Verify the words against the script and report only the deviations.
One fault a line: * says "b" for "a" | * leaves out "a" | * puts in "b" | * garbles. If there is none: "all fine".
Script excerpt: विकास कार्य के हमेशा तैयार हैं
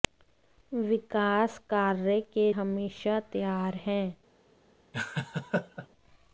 all fine